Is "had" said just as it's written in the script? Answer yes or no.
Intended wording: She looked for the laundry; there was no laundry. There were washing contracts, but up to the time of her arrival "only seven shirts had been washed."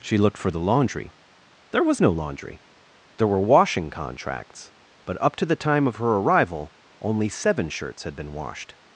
yes